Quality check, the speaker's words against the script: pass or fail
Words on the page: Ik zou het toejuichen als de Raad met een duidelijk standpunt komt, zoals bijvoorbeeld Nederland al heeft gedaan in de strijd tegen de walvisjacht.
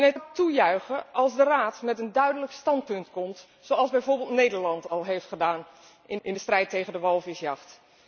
fail